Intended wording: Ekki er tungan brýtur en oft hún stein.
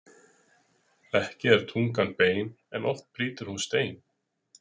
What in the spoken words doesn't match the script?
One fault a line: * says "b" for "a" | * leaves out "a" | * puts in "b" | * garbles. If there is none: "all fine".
* says "bein" for "brýtur"
* puts in "brýtur"